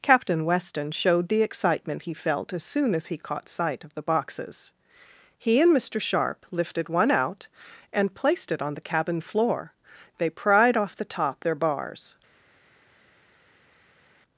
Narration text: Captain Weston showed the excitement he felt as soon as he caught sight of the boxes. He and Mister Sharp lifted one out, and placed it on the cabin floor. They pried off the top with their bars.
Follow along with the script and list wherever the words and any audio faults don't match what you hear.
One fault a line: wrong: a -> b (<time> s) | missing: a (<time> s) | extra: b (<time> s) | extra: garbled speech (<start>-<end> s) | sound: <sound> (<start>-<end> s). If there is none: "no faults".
missing: with (11.4 s)